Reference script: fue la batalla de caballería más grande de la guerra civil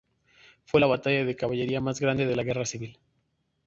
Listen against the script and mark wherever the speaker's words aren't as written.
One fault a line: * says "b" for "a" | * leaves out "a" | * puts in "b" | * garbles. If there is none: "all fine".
all fine